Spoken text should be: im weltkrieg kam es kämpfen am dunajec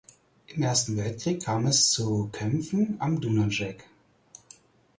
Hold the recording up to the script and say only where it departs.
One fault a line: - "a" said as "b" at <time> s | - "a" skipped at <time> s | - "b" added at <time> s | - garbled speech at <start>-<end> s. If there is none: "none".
- "ersten" added at 0.6 s
- "zu" added at 1.9 s